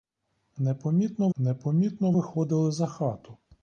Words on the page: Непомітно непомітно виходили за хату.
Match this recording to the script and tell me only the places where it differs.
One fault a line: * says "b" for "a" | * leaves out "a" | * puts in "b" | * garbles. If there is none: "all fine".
all fine